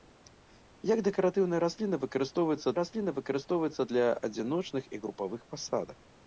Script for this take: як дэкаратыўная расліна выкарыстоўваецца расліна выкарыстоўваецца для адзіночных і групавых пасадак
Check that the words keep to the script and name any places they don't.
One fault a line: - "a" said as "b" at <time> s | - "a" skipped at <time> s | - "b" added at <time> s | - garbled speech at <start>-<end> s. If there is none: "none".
none